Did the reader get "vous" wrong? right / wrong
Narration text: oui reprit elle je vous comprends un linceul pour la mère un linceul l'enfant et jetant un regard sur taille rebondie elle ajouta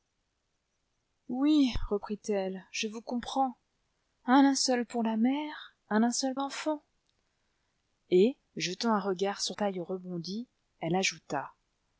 right